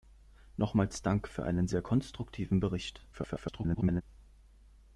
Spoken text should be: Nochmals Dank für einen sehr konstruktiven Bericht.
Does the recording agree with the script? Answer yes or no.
no